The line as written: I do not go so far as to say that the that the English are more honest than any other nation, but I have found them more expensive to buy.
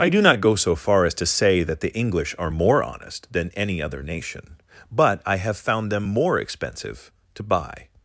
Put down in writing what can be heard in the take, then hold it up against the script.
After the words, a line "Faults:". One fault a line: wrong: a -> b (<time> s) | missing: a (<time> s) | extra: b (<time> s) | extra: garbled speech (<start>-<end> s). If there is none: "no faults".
I do not go so far as to say that the English are more honest than any other nation, but I have found them more expensive to buy.
Faults:
missing: that the (1.9 s)